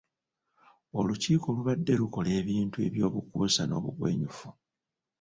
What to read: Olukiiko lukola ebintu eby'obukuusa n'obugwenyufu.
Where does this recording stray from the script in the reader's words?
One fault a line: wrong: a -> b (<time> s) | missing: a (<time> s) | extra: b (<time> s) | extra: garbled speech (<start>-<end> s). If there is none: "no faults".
extra: lubadde (1.6 s)